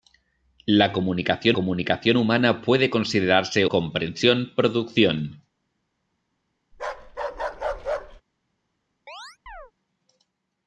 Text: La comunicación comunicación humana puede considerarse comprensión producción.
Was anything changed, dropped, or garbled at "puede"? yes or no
no